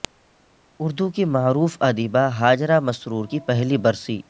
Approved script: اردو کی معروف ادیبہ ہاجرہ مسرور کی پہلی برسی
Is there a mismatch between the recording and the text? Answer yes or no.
no